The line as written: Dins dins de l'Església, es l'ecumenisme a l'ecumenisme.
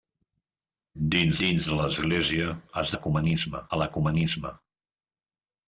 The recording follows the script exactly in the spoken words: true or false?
true